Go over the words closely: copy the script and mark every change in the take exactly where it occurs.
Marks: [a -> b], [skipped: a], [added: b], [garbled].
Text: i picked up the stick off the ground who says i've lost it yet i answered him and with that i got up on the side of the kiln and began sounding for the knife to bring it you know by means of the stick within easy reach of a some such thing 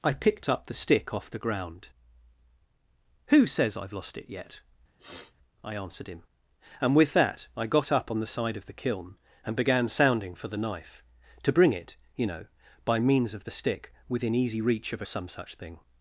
i picked up the stick off the ground who says i've lost it yet i answered him and with that i got up on the side of the kiln and began sounding for the knife to bring it you know by means of the stick within easy reach of a some such thing